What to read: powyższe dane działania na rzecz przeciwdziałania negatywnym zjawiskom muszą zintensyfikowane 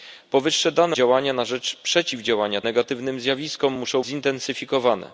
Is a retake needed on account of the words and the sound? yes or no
no